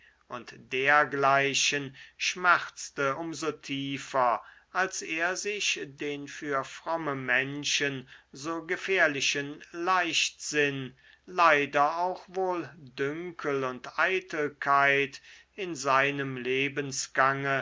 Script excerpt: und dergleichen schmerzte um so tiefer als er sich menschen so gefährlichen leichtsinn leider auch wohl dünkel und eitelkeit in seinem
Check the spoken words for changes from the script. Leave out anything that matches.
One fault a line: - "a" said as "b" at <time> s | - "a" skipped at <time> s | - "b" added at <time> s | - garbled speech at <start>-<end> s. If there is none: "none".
- "den für fromme" added at 5.8 s